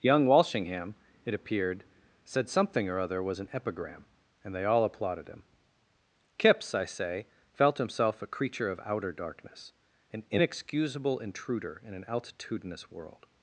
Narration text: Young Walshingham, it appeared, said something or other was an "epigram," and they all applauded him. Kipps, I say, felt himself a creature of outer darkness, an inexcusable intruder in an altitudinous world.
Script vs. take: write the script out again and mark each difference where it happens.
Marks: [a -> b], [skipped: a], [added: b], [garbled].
Young Walshingham, it appeared, said something or other was an "epigram," and they all applauded him. Kipps, I say, felt himself a creature of outer darkness, an inexcusable intruder in an altitudinous world.